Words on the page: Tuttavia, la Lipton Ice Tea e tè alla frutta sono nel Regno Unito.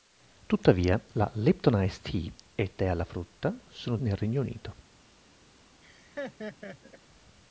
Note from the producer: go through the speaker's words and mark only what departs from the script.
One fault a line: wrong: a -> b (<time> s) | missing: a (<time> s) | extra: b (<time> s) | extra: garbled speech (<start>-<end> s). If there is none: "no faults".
no faults